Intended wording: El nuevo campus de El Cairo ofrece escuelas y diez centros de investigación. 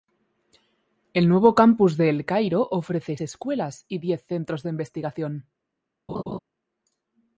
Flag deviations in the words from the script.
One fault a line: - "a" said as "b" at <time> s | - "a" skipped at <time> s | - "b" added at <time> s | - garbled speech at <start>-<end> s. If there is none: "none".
none